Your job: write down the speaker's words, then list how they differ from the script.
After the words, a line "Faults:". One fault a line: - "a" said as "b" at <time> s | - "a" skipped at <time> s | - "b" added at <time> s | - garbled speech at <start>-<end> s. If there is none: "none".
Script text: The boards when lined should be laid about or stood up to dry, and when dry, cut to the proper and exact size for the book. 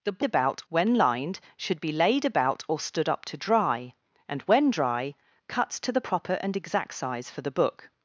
The about when lined should be laid about or stood up to dry, and when dry, cut to the proper and exact size for the book.
Faults:
- "boards" said as "about" at 0.2 s